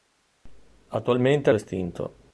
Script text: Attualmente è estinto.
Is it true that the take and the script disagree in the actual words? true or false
false